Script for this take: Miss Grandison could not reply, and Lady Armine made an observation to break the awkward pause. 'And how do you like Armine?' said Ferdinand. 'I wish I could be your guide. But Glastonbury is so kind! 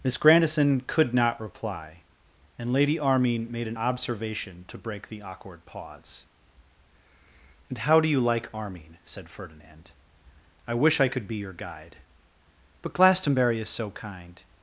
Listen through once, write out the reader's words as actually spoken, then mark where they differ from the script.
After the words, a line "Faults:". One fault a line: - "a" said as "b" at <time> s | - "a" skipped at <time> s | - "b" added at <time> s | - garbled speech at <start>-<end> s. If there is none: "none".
Miss Grandison could not reply, and Lady Armine made an observation to break the awkward pause. 'And how do you like Armine?' said Ferdinand. 'I wish I could be your guide. But Glastonbury is so kind!
Faults:
none